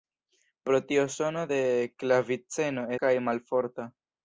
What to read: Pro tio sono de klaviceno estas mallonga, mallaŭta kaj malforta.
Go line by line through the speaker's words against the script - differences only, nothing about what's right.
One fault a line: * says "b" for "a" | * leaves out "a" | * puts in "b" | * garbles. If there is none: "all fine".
* leaves out "estas mallonga mallaŭta"